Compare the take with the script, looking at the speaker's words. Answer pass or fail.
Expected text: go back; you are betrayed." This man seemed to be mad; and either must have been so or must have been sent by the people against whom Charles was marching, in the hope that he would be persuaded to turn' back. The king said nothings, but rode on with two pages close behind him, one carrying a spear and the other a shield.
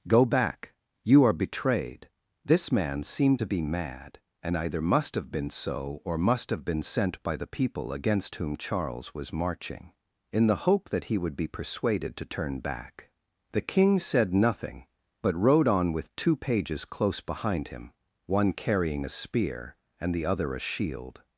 fail